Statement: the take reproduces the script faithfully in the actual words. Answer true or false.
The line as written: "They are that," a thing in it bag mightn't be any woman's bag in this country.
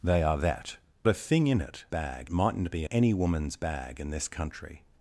true